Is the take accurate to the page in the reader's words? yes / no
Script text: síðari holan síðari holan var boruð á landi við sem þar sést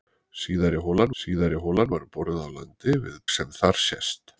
yes